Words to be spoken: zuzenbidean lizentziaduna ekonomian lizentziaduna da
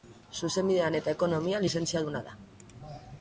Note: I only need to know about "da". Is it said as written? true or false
true